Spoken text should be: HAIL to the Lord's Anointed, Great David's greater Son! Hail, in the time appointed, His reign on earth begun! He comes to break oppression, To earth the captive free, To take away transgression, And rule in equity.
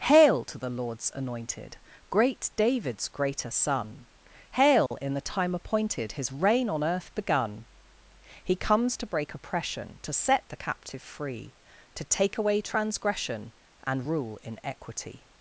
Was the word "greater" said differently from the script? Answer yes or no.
no